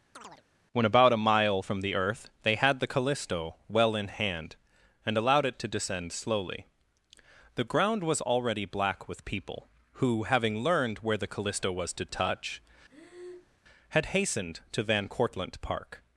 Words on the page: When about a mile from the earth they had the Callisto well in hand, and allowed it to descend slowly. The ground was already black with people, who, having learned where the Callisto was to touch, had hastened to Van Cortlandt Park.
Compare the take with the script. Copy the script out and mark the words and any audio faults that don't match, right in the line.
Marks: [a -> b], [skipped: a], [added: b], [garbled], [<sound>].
[chirp] When about a mile from the earth they had the Callisto well in hand, and allowed it to descend slowly. The ground was already black with people, who, having learned where the Callisto was to touch, [breath] had hastened to Van Cortlandt Park.